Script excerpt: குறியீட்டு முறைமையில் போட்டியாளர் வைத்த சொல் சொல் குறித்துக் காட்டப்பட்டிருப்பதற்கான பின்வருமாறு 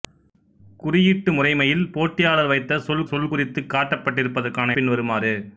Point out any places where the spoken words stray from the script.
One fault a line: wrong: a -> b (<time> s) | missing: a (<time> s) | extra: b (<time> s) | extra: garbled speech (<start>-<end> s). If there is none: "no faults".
no faults